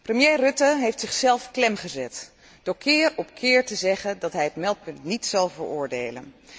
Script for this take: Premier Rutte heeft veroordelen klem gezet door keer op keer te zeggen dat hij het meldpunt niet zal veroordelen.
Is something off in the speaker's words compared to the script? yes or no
yes